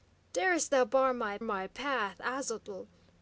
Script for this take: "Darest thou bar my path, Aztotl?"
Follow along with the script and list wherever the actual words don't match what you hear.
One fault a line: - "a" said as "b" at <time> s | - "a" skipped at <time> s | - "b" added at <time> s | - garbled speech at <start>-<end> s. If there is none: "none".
- "my" added at 1.4 s